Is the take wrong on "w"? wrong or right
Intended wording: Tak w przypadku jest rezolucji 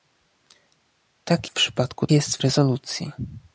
right